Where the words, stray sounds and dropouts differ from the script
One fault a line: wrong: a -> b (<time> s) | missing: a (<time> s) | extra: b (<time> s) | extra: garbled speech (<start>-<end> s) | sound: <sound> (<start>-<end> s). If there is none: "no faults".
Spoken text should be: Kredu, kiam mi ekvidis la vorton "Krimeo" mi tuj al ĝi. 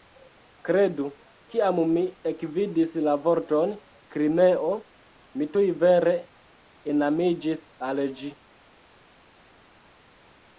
extra: vere enamiĝis (5.9 s)